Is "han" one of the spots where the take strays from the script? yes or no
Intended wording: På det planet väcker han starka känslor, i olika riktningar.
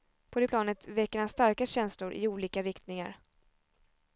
no